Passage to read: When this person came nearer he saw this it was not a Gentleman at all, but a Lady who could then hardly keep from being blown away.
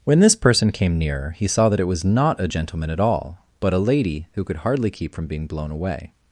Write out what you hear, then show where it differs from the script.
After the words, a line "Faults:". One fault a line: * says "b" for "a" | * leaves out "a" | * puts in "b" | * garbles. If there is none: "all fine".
When this person came nearer he saw that it was not a Gentleman at all, but a Lady who could hardly keep from being blown away.
Faults:
* says "that" for "this"
* leaves out "then"